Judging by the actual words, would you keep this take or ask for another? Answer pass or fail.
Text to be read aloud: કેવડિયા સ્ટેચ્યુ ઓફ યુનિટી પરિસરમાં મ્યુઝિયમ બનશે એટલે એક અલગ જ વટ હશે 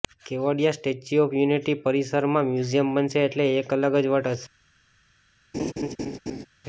pass